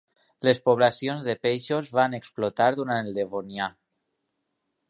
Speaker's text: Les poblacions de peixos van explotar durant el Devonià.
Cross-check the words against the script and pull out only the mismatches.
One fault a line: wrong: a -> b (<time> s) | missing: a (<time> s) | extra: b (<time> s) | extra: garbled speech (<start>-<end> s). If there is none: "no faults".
no faults